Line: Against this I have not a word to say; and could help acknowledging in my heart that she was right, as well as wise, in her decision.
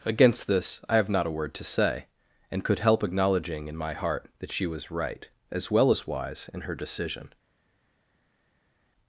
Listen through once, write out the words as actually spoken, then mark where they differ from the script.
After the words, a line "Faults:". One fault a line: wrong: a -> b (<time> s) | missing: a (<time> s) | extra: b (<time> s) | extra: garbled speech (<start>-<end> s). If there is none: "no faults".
Against this I have not a word to say; and could help acknowledging in my heart that she was right, as well as wise, in her decision.
Faults:
no faults